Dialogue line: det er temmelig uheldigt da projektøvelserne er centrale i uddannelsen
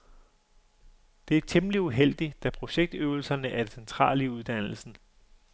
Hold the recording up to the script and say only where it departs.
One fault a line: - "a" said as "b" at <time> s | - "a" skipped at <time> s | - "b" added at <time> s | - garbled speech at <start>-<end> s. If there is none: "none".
- "det" added at 3.6 s